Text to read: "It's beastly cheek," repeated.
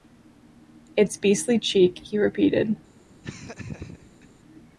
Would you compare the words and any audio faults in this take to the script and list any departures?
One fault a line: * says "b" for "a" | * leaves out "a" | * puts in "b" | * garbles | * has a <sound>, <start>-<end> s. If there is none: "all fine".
* puts in "he"
* has a laugh, 3.2-4.3 s